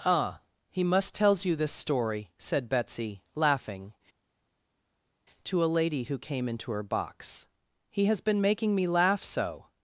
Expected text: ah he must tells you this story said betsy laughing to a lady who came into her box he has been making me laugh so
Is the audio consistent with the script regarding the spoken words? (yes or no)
yes